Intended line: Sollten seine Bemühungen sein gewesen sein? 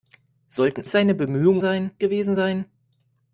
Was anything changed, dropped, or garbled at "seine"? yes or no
no